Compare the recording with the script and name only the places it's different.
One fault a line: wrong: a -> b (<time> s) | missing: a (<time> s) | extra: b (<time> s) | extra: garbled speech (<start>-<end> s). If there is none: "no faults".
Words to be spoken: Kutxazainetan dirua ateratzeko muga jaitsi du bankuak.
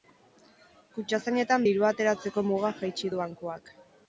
no faults